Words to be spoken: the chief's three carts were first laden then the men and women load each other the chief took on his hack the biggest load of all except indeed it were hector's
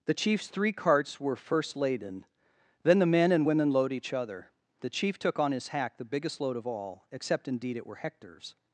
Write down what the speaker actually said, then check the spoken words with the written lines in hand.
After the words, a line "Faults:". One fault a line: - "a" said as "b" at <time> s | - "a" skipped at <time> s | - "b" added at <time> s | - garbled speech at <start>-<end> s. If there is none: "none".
the chief's three carts were first laden then the men and women load each other the chief took on his hack the biggest load of all except indeed it were hector's
Faults:
none